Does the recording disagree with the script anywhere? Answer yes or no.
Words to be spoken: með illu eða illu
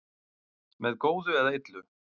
yes